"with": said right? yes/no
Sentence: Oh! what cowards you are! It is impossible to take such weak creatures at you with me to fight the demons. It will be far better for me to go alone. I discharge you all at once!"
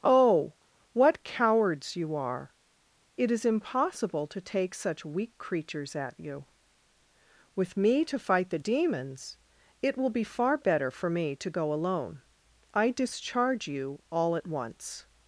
yes